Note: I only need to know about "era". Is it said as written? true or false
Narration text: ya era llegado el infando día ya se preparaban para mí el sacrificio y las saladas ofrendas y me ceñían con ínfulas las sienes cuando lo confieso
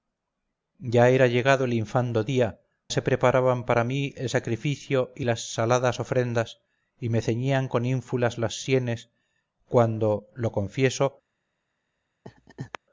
true